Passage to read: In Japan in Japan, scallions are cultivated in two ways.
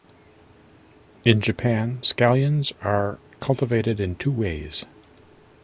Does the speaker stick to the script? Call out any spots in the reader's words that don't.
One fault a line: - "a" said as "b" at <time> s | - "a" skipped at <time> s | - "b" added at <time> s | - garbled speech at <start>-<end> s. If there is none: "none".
- "in Japan" skipped at 2.0 s